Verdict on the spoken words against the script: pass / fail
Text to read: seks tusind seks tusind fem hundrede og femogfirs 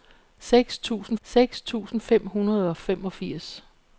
pass